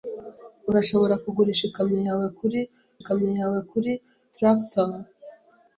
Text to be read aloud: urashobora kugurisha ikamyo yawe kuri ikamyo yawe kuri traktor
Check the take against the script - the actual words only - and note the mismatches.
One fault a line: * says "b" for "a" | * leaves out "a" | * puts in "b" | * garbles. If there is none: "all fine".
all fine